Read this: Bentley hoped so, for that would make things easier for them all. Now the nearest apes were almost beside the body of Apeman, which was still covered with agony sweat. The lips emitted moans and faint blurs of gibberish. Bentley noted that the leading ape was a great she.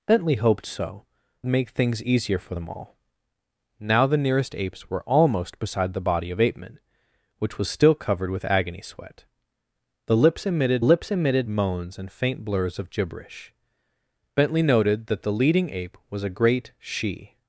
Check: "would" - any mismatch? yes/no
yes